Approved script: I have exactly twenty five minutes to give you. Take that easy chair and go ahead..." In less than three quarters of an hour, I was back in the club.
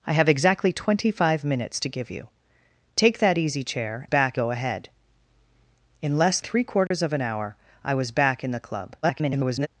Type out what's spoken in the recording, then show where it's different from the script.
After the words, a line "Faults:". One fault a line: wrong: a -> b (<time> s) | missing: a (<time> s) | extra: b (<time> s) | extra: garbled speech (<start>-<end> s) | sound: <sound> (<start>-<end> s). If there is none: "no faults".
I have exactly twenty five minutes to give you. Take that easy chair back go ahead..." In less three quarters of an hour, I was back in the club. [garbled]
Faults:
wrong: and -> back (4.0 s)
missing: than (6.4 s)
sound: dropout (6.9-6.9 s)
extra: garbled speech (9.0-9.7 s)